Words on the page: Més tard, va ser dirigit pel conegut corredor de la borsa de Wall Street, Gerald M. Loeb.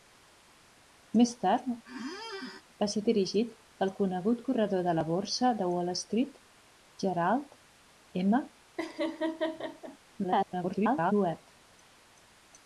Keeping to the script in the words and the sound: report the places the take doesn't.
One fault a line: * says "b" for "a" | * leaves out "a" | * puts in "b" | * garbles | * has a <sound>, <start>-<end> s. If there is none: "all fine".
* has a squeak, 1.8-2.6 s
* has a laugh, 8.8-10.0 s
* garbles